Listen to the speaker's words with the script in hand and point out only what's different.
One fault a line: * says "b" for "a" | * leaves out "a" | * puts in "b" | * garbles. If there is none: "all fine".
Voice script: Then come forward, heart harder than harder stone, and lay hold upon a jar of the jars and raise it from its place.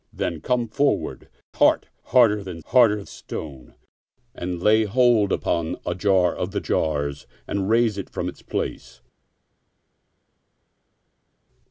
all fine